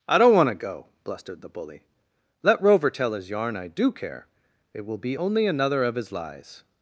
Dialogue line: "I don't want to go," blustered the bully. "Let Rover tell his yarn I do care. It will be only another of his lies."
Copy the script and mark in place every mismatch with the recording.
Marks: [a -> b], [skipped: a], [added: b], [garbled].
"I don't want to go," blustered the bully. "Let Rover tell his yarn I do care. It will be only another of his lies."